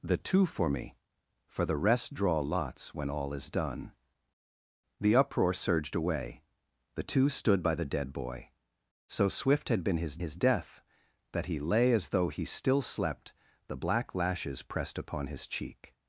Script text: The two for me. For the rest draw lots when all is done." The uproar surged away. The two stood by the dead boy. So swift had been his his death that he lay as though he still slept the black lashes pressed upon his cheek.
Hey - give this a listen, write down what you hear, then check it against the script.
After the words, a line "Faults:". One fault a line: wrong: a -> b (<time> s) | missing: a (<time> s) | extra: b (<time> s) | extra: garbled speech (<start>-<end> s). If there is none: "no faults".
The two for me. For the rest draw lots when all is done." The uproar surged away. The two stood by the dead boy. So swift had been his his death that he lay as though he still slept the black lashes pressed upon his cheek.
Faults:
no faults